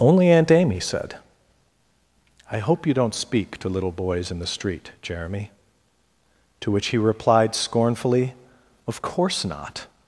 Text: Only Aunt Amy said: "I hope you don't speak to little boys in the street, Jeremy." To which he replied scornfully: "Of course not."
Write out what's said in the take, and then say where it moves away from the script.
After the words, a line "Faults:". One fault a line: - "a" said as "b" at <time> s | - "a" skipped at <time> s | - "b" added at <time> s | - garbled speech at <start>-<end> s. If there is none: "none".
Only Aunt Amy said: "I hope you don't speak to little boys in the street, Jeremy." To which he replied scornfully: "Of course not."
Faults:
none